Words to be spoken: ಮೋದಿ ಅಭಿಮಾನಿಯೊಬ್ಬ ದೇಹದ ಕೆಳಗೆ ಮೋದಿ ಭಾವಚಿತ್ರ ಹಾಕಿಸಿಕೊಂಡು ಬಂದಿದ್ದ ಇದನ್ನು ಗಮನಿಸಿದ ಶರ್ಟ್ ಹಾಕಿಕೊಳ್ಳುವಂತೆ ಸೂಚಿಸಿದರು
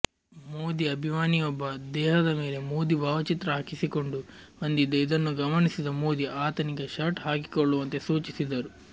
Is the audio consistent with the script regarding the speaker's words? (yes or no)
no